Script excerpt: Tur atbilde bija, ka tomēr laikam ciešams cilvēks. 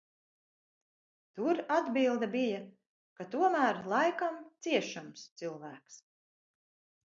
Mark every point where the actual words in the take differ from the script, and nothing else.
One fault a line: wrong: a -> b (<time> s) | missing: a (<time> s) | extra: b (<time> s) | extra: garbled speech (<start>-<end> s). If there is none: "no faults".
no faults